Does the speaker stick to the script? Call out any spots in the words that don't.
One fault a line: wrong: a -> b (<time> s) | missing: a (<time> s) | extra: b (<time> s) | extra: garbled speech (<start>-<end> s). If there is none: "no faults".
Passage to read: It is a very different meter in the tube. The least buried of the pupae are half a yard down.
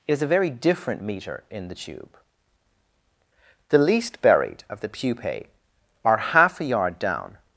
no faults